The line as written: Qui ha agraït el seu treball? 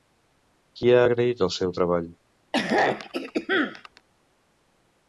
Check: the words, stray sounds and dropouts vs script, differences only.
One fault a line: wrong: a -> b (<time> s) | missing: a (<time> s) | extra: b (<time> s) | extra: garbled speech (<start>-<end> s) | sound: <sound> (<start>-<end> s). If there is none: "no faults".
sound: throat clearing (2.5-4.0 s)